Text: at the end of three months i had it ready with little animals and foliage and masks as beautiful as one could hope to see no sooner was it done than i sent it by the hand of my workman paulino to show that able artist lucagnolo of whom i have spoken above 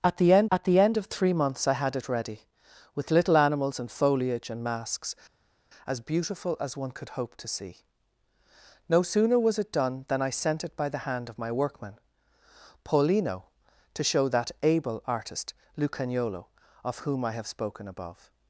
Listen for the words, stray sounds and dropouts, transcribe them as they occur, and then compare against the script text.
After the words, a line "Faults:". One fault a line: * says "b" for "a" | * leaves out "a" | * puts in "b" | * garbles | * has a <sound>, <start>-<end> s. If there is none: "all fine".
at the end at the end of three months i had it ready with little animals and foliage and masks as beautiful as one could hope to see no sooner was it done than i sent it by the hand of my workman paulino to show that able artist lucagnolo of whom i have spoken above
Faults:
* puts in "at the end"